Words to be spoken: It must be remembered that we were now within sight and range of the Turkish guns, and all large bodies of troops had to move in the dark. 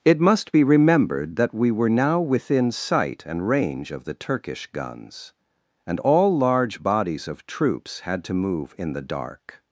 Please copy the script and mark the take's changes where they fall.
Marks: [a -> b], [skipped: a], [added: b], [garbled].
It must be remembered that we were now within sight and range of the Turkish guns, and all large bodies of troops had to move in the dark.